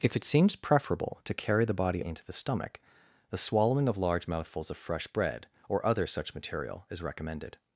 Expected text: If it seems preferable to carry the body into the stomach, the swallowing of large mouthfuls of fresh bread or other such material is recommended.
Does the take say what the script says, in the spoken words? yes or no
yes